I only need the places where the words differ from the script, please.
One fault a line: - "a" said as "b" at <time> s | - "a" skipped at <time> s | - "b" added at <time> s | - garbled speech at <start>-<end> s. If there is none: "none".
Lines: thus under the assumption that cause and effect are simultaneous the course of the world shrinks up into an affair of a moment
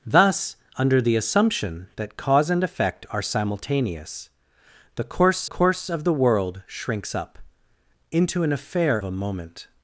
- "course" added at 5.4 s
- "of" skipped at 9.0 s